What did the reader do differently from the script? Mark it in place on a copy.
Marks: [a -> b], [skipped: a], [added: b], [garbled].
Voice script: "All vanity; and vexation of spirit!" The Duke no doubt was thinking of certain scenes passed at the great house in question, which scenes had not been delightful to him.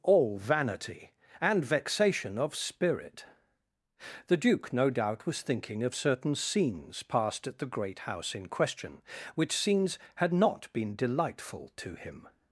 "All vanity; and vexation of spirit!" The Duke no doubt was thinking of certain scenes passed at the great house in question, which scenes had not been delightful to him.